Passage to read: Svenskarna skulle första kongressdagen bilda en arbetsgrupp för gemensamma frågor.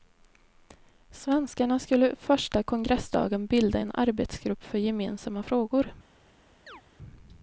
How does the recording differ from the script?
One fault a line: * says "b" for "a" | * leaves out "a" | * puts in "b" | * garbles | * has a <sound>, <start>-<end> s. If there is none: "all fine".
* has a chirp, 6.7-6.8 s